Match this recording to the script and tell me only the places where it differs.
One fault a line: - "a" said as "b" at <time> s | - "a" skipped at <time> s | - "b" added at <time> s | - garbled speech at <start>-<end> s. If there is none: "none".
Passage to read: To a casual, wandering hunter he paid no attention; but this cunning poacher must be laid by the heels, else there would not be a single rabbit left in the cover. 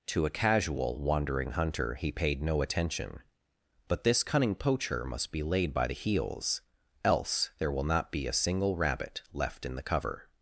- "would" said as "will" at 7.7 s